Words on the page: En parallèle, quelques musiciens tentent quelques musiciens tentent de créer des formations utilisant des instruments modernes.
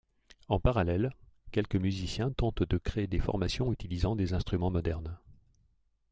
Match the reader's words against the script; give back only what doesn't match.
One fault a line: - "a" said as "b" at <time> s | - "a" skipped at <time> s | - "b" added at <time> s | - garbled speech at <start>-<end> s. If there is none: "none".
- "quelques musiciens tentent" skipped at 2.6 s